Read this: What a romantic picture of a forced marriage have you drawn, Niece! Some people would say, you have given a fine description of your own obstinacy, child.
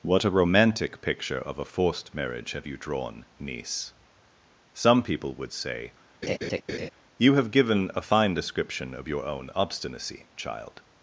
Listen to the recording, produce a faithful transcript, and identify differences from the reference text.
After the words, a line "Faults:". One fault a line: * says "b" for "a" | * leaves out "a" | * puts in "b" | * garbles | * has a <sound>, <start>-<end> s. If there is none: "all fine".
What a romantic picture of a forced marriage have you drawn, Niece! Some people would say, you have given a fine description of your own obstinacy, child.
Faults:
* has a laugh, 6.2-6.9 s